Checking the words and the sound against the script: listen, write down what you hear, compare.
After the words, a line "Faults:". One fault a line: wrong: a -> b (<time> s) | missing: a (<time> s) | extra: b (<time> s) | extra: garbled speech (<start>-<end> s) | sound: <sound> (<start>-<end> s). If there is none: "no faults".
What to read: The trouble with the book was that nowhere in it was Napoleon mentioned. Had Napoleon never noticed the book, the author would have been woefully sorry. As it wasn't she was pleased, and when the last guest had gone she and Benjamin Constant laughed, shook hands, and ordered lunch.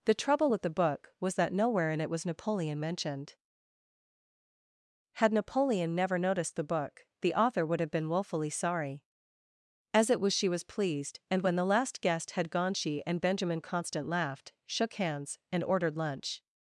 The trouble with the book was that nowhere in it was Napoleon mentioned. Had Napoleon never noticed the book, the author would have been woefully sorry. As it was she was pleased, and when the last guest had gone she and Benjamin Constant laughed, shook hands, and ordered lunch.
Faults:
wrong: wasn't -> was (10.2 s)